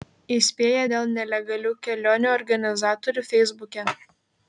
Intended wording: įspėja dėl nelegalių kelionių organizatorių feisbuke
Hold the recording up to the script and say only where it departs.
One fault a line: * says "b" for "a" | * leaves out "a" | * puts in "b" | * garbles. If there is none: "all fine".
all fine